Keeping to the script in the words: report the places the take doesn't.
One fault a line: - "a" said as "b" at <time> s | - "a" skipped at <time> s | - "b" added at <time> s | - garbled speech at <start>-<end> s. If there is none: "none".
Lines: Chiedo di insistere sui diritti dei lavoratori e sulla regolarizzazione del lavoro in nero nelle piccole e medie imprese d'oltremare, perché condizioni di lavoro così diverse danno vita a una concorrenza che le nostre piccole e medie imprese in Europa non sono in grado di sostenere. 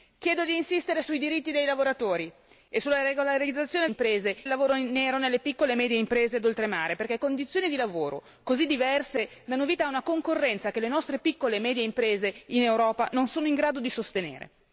- "del" said as "imprese" at 3.8 s